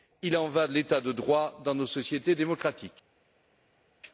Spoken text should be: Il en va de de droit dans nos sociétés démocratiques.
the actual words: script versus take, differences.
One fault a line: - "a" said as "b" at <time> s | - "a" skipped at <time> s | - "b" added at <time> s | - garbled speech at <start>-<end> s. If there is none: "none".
- "l'État" added at 0.7 s